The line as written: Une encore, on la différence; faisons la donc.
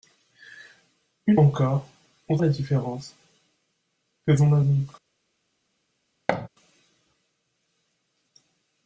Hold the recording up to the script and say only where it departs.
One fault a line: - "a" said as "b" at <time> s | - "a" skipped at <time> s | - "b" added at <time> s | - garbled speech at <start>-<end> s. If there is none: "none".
none